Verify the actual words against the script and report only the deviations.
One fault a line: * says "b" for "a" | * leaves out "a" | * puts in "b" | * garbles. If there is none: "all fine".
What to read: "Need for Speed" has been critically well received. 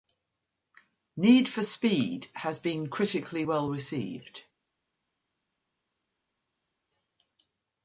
all fine